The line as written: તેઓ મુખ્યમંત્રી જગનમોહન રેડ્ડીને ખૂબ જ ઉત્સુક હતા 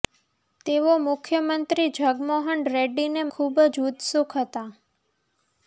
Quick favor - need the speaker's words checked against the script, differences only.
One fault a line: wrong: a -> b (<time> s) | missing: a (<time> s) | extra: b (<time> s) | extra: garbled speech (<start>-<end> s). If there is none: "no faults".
no faults